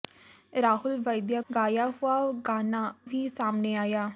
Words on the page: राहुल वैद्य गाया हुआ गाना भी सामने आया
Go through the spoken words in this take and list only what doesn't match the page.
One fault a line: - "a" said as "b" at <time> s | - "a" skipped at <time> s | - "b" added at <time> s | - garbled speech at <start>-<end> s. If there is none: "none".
none